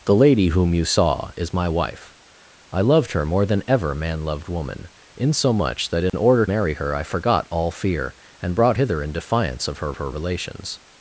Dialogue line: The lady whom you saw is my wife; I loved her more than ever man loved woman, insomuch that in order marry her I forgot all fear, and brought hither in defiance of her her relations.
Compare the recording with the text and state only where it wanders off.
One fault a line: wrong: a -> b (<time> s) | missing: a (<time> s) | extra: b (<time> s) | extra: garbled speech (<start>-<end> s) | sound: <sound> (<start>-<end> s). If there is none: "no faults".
sound: dropout (6.1-6.1 s)